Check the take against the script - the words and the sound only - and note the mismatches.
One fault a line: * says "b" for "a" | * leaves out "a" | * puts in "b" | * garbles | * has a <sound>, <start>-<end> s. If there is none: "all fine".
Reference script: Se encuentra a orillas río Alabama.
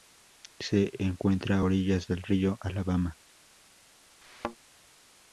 * puts in "del"
* has a thud, 4.2-4.6 s